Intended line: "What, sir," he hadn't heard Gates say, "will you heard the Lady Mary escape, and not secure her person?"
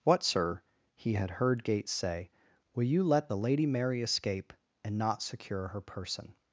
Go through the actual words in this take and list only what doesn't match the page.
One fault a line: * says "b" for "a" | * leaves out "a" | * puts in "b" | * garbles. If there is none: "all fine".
* says "had" for "hadn't"
* says "let" for "heard"